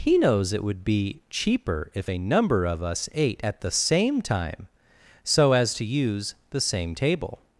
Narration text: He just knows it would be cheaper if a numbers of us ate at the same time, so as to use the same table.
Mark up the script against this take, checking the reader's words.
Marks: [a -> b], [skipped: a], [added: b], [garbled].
He [skipped: just] knows it would be cheaper if a [numbers -> number] of us ate at the same time, so as to use the same table.